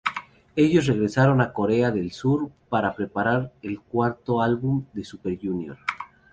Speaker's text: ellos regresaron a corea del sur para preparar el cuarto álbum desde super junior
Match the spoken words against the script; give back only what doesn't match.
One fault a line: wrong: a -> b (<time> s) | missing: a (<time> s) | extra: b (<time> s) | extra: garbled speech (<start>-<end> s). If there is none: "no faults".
wrong: desde -> de (4.9 s)